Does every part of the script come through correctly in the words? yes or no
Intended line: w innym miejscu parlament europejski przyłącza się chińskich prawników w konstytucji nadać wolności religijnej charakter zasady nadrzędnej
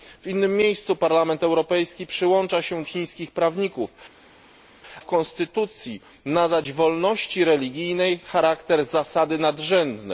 yes